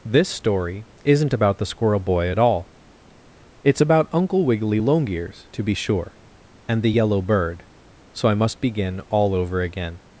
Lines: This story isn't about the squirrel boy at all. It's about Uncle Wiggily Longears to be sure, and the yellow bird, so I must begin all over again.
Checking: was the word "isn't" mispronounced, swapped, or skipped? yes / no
no